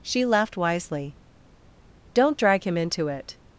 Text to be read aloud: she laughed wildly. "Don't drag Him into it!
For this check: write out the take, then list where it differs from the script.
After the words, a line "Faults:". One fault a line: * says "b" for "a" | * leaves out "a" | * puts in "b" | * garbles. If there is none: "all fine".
she laughed wisely. "Don't drag Him into it!
Faults:
* says "wisely" for "wildly"